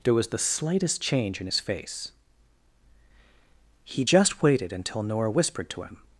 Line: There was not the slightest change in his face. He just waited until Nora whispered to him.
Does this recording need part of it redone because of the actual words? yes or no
yes